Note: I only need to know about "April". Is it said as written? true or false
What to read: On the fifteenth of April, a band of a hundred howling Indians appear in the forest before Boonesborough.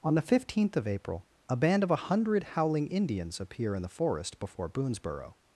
true